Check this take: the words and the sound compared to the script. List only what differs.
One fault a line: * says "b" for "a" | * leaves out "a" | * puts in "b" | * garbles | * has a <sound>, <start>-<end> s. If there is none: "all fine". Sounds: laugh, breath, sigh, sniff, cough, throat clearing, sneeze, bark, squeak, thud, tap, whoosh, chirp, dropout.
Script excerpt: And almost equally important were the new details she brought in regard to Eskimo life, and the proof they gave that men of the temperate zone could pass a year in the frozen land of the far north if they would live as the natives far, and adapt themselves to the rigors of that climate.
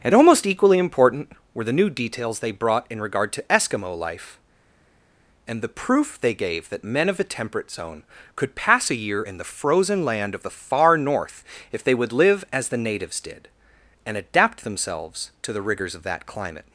* says "they" for "she"
* says "did" for "far"